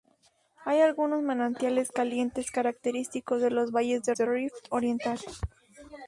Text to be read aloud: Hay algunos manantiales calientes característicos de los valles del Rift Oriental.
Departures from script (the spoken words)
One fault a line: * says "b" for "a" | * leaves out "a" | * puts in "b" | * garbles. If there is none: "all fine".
* puts in "del"